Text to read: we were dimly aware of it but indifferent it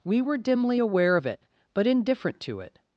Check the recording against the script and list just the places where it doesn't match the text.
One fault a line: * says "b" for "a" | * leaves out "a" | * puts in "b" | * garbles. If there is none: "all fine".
* puts in "to"